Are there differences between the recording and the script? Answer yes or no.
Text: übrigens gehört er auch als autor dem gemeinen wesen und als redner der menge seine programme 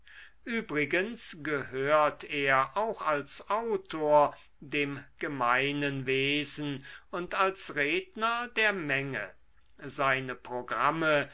no